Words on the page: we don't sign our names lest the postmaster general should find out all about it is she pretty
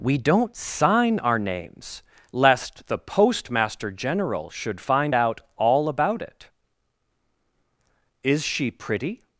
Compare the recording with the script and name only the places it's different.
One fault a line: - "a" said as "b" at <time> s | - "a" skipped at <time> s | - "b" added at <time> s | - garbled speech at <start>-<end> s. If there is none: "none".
none